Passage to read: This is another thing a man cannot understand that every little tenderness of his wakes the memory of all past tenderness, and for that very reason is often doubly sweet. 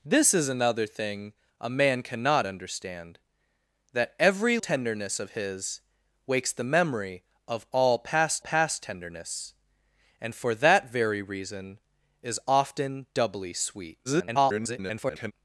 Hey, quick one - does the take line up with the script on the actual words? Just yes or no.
no